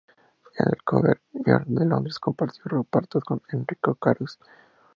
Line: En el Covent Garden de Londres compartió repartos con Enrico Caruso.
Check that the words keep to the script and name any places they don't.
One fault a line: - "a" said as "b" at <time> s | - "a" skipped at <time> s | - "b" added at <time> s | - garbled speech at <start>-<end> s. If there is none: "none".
none